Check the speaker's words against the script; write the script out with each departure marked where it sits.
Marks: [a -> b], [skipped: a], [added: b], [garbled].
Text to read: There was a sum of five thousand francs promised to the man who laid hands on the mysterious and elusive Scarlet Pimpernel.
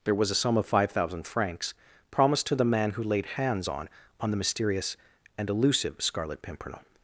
There was a sum of five thousand francs promised to the man who laid hands on [added: on] the mysterious and elusive Scarlet Pimpernel.